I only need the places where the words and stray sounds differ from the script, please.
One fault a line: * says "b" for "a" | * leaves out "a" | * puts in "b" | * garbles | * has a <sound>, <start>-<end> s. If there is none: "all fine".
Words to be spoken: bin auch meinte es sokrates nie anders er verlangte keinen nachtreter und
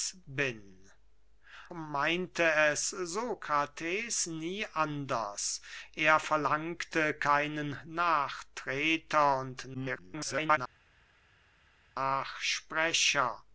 * leaves out "auch"
* garbles